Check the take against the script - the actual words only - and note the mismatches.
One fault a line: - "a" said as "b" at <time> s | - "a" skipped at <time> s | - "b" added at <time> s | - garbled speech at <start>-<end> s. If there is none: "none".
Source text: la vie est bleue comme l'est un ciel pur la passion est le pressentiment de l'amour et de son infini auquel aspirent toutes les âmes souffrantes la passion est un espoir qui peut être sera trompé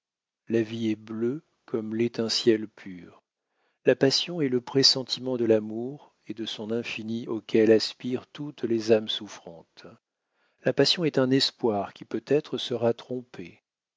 none